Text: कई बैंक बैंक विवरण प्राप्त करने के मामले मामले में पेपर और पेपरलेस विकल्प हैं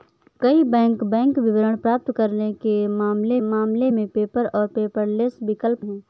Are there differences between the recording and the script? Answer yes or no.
no